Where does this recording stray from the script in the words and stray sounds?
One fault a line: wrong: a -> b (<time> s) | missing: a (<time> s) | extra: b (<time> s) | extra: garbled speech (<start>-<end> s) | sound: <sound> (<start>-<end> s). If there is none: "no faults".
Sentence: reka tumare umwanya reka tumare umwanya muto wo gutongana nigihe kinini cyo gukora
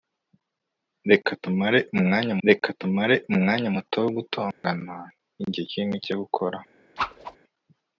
sound: dropout (4.5-4.6 s)
sound: whoosh (7.0-7.4 s)